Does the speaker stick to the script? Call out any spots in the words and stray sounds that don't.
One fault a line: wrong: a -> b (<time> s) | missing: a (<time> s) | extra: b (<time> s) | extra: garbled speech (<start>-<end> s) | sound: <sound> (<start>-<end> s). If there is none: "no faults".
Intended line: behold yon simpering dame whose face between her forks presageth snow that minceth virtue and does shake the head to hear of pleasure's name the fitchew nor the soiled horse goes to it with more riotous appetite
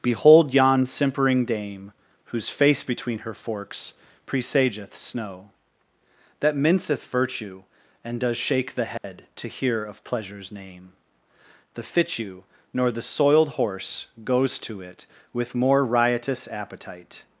sound: dropout (9.0-9.0 s)